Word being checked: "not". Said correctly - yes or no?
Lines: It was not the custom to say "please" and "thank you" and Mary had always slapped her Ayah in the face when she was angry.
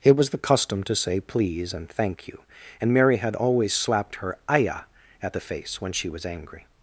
no